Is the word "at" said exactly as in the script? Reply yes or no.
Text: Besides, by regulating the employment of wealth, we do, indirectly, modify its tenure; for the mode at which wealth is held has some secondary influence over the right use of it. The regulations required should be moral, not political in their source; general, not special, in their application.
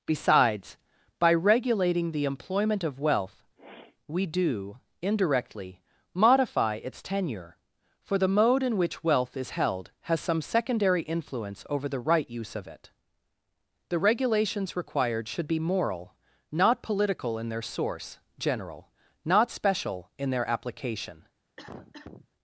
no